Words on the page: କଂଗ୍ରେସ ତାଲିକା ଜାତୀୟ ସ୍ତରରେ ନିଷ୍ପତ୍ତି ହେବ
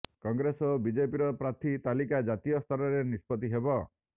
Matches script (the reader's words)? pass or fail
fail